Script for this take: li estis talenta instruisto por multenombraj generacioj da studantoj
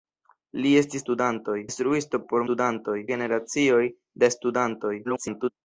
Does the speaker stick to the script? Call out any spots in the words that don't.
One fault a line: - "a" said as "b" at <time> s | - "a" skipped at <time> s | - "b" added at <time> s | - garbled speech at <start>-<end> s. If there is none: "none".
- "talenta" said as "studantoj" at 1.0 s
- "multenombraj" said as "studantoj" at 2.4 s
- garbled speech at 5.0-5.5 s